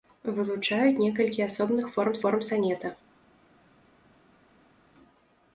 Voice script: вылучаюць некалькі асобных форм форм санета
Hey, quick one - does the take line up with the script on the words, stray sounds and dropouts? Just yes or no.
yes